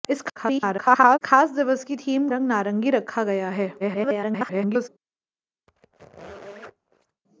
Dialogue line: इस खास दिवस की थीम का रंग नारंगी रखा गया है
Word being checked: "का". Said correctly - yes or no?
no